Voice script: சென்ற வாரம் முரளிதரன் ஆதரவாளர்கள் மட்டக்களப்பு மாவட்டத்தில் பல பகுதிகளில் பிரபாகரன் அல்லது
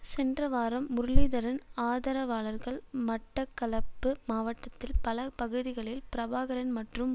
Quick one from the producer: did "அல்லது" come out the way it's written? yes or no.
no